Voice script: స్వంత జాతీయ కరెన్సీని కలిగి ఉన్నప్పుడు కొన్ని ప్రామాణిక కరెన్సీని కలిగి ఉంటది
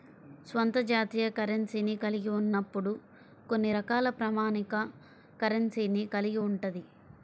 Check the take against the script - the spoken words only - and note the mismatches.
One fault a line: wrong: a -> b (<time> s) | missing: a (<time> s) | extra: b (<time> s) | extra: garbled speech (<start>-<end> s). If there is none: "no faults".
extra: రకాల (3.8 s)